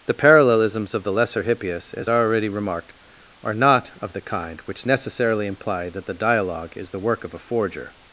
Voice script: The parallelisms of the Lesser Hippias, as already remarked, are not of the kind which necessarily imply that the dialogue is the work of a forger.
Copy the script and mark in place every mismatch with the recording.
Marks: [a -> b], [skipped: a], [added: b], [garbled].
The parallelisms of the Lesser Hippias, as already remarked, are not of the kind which necessarily imply that the dialogue is the work of a forger.